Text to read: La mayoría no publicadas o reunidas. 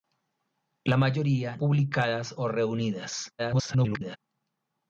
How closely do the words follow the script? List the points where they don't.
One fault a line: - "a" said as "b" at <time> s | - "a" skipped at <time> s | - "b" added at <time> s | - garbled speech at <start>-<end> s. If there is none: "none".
- "no" skipped at 1.6 s
- garbled speech at 3.4-4.2 s